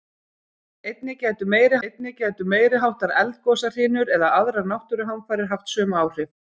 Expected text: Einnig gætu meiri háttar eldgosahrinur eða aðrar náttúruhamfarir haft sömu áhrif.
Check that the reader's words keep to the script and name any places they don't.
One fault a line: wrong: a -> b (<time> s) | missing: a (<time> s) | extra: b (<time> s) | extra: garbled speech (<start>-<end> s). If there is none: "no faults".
extra: einnig gætu meiri (1.9 s)